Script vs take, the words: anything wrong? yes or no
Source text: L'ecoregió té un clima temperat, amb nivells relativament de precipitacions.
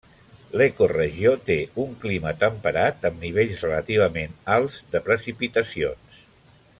yes